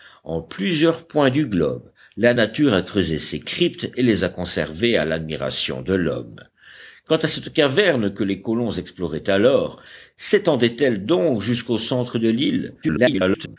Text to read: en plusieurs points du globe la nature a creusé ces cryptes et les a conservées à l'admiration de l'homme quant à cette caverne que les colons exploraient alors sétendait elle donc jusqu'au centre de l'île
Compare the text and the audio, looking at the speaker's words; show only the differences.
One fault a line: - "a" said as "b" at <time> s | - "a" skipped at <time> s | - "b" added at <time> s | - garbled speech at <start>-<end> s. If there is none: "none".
- garbled speech at 12.8-13.6 s